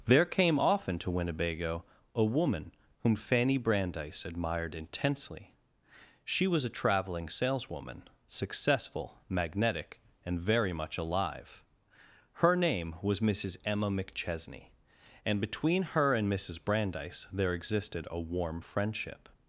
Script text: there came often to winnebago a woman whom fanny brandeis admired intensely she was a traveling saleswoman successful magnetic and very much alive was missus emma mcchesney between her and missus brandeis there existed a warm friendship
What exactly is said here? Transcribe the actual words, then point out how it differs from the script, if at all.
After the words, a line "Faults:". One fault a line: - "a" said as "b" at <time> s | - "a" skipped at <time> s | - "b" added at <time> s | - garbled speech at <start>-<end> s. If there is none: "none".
there came often to winnebago a woman whom fanny brandeis admired intensely she was a traveling saleswoman successful magnetic and very much alive her name was missus emma mcchesney and between her and missus brandeis there existed a warm friendship
Faults:
- "her name" added at 12.3 s
- "and" added at 15.2 s